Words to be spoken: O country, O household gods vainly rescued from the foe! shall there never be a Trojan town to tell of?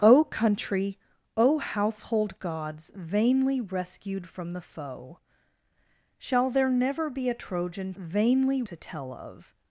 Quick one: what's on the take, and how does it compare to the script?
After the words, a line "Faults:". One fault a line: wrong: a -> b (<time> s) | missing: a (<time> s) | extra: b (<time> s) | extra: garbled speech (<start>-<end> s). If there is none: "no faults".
O country, O household gods vainly rescued from the foe! shall there never be a Trojan vainly to tell of?
Faults:
wrong: town -> vainly (8.0 s)